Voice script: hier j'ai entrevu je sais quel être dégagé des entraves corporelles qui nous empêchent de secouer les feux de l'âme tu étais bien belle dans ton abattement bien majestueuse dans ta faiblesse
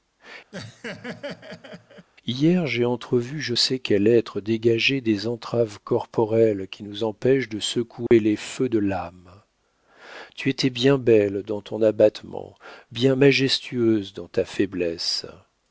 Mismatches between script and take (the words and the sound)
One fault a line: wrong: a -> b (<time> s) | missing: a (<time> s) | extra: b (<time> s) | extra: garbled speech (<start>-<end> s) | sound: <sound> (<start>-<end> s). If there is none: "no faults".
sound: laugh (0.5-2.1 s)
sound: dropout (8.1-8.1 s)